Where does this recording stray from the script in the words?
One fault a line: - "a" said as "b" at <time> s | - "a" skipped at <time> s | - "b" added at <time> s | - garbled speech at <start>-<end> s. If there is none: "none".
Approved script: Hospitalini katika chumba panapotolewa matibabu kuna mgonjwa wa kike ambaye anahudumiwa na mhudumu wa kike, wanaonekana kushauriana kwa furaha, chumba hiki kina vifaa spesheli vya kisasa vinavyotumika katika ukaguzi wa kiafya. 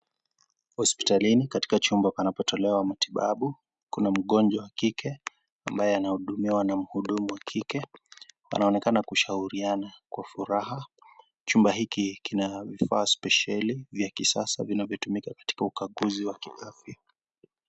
none